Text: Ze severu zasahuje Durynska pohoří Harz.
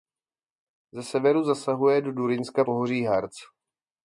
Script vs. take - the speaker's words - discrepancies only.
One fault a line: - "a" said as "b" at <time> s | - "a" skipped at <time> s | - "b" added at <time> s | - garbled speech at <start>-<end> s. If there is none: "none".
- "do" added at 2.0 s